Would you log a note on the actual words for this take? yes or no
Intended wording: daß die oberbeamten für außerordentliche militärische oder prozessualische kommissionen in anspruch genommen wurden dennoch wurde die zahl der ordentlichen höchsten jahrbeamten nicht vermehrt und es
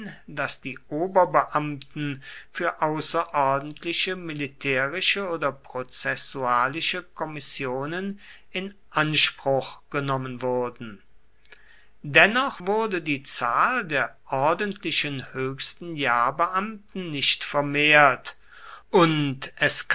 no